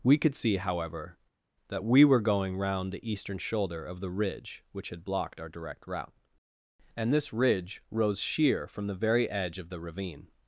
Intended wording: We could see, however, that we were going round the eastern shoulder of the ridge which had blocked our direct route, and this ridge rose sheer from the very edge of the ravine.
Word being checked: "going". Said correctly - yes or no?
yes